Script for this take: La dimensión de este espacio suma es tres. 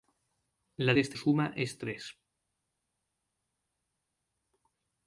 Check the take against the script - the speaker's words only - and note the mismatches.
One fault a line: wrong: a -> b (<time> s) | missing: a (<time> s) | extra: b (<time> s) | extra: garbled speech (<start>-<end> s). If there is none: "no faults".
missing: dimensión (0.9 s)
missing: espacio (1.2 s)